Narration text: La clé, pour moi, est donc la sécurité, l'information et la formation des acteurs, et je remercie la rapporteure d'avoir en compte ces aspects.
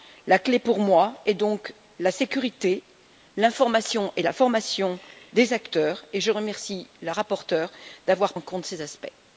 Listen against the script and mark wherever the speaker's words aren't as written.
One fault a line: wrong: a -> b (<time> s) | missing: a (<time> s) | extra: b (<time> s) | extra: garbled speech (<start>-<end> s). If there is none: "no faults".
no faults